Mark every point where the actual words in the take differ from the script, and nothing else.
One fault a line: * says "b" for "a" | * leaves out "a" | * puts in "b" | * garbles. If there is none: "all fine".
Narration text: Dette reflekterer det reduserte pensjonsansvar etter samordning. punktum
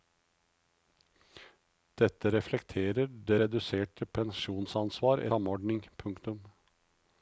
* leaves out "etter"